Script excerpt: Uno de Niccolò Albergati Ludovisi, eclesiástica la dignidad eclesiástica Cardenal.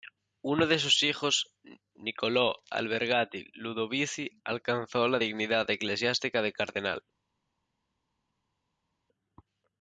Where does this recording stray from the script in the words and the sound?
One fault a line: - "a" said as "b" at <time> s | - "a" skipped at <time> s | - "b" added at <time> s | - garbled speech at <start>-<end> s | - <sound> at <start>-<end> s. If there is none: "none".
- "sus hijos" added at 0.8 s
- "eclesiástica" said as "alcanzó" at 4.4 s
- "de" added at 6.4 s